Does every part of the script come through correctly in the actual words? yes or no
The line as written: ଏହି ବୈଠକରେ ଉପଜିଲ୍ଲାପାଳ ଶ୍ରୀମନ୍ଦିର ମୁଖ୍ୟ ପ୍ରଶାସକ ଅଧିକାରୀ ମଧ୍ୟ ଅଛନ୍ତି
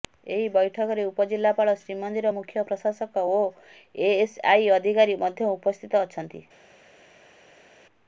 no